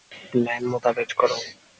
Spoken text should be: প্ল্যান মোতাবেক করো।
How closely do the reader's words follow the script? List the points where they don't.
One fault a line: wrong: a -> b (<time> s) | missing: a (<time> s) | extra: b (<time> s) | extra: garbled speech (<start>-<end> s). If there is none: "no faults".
no faults